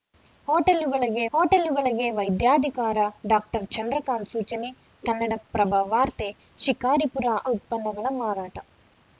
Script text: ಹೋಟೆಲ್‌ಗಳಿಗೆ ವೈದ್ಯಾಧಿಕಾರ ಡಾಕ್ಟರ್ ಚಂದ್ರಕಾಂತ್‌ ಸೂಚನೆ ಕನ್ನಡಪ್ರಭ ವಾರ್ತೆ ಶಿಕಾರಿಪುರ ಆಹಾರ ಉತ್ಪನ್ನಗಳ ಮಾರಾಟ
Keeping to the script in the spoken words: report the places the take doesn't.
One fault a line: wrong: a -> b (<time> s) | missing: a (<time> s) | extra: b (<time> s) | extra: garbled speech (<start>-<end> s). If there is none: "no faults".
extra: ಹೋಟೆಲ್‌ಗಳಿಗೆ (1.3 s)
missing: ಆಹಾರ (7.3 s)